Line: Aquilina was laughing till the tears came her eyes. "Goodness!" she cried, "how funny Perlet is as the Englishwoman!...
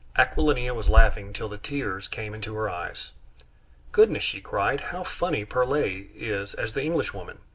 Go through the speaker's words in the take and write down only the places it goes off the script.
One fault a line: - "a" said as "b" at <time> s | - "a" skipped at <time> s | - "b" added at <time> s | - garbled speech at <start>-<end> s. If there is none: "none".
- "into" added at 2.3 s